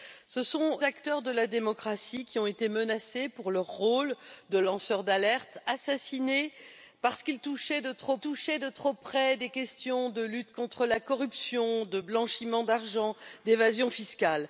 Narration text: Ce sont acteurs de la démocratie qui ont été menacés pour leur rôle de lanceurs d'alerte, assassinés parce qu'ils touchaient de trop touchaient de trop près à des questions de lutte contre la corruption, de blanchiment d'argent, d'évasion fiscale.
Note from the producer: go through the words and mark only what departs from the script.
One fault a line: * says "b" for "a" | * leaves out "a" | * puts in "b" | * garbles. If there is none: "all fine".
all fine